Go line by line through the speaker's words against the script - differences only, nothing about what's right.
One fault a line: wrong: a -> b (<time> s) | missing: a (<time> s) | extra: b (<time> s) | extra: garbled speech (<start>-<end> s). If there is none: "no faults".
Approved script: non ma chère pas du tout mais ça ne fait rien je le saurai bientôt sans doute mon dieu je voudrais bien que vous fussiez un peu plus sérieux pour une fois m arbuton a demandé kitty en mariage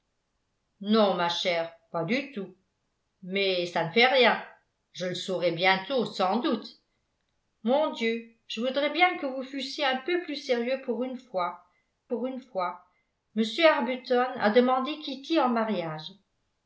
extra: pour une fois (12.1 s)